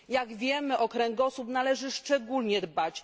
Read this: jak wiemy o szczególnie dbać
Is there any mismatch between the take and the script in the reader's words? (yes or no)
yes